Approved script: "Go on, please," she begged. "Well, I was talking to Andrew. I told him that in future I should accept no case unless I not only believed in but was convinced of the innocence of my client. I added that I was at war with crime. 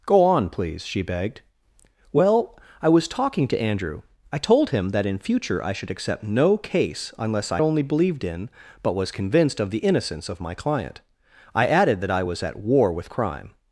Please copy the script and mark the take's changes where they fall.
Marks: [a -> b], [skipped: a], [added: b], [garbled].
"Go on, please," she begged. "Well, I was talking to Andrew. I told him that in future I should accept no case unless I [skipped: not] only believed in but was convinced of the innocence of my client. I added that I was at war with crime.